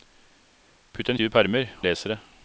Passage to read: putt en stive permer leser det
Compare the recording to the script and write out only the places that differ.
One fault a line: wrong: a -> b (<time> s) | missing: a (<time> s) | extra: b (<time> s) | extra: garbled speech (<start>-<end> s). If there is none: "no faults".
no faults